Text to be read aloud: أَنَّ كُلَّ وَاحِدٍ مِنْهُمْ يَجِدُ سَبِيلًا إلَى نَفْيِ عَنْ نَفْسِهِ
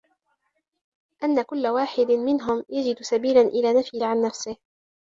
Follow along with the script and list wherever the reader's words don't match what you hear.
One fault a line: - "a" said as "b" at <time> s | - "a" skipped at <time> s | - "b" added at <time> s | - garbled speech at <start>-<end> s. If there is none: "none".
none